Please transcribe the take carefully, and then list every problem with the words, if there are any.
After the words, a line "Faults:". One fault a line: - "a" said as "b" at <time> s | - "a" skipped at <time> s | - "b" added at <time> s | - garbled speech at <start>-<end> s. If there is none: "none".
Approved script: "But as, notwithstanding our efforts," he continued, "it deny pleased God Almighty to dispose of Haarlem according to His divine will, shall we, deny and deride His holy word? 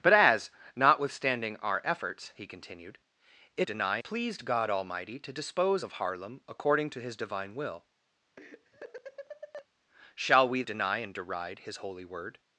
"But as, notwithstanding our efforts," he continued, "it deny pleased God Almighty to dispose of Haarlem according to His divine will, shall we, deny and deride His holy word?
Faults:
none